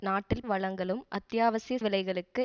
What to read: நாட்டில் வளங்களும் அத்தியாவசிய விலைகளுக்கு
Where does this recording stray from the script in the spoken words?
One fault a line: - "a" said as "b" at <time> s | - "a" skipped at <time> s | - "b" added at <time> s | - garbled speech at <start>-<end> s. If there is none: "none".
none